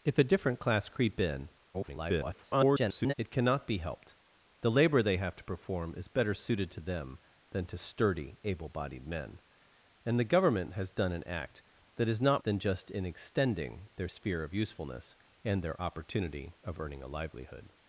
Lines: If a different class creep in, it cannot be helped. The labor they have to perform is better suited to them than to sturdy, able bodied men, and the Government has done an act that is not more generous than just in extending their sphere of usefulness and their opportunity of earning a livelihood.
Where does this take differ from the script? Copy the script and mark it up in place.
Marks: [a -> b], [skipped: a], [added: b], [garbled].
If a different class creep in, [garbled] it cannot be helped. The labor they have to perform is better suited to them than to sturdy, able bodied men, and the Government has done an act that is not [skipped: more generous] than just in extending their sphere of usefulness and their opportunity of earning a livelihood.